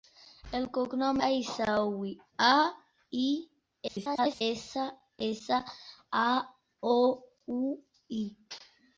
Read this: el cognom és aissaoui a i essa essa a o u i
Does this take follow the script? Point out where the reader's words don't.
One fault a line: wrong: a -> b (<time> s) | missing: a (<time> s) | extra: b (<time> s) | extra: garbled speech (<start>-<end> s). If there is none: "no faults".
missing: és (1.2 s)
extra: garbled speech (3.9-4.4 s)